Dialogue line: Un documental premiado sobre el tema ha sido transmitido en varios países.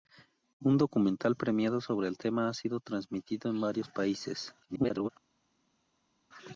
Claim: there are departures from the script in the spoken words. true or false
true